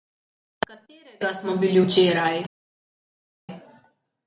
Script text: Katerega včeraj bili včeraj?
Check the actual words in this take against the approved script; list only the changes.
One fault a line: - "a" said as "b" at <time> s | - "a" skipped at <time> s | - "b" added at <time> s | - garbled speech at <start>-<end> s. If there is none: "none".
- "včeraj" said as "smo" at 1.3 s